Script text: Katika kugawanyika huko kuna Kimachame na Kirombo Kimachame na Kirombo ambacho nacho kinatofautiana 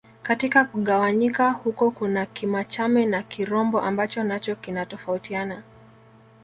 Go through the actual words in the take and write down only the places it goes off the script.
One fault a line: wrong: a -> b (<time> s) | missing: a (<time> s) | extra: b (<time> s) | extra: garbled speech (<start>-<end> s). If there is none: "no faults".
missing: Kimachame na Kirombo (3.8 s)